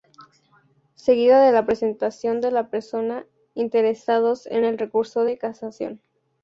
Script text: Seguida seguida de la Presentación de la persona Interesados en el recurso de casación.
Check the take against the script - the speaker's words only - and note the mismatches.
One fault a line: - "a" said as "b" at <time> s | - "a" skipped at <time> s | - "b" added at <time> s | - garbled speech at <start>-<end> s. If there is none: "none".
- "seguida" skipped at 1.4 s